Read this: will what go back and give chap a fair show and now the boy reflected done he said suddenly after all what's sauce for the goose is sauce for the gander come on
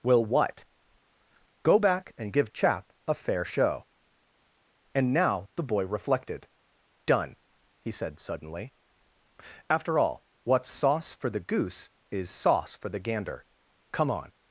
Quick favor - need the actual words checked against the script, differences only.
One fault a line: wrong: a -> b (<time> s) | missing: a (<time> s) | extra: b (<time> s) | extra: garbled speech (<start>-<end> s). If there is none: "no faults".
no faults